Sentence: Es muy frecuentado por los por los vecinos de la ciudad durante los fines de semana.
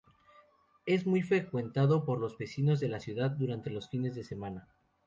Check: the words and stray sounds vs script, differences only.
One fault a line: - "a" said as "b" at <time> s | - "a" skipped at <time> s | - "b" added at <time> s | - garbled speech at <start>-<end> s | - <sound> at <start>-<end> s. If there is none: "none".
- "por los" skipped at 2.4 s